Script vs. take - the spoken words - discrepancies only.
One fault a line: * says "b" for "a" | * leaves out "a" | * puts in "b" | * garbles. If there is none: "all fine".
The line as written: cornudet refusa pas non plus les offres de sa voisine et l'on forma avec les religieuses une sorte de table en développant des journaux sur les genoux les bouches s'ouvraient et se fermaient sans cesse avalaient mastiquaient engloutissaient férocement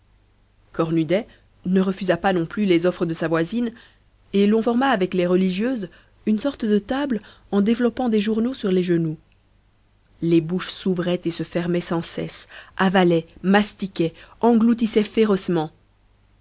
* puts in "ne"